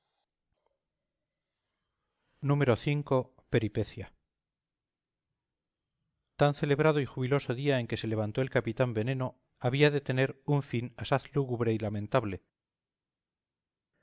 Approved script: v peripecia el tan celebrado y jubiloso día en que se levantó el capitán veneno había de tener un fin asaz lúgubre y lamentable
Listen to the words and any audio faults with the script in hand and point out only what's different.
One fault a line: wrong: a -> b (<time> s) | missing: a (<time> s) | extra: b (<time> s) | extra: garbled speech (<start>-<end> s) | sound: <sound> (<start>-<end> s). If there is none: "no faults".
missing: el (4.1 s)